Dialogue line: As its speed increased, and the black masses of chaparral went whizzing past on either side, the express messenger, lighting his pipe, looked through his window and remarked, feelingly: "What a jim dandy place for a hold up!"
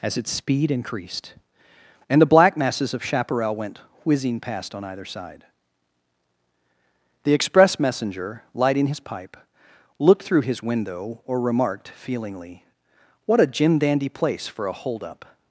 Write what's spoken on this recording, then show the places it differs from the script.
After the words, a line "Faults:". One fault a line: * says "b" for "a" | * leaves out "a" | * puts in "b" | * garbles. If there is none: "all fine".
As its speed increased, and the black masses of chaparral went whizzing past on either side, the express messenger, lighting his pipe, looked through his window or remarked, feelingly: "What a jim dandy place for a hold up!"
Faults:
* says "or" for "and"